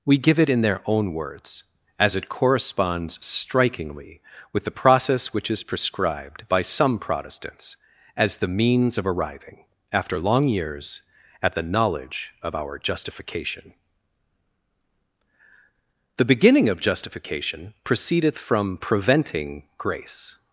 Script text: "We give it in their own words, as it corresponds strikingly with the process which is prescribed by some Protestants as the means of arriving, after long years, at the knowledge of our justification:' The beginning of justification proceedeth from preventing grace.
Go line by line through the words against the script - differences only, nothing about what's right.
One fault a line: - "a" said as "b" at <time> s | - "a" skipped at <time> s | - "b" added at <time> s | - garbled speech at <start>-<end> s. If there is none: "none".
none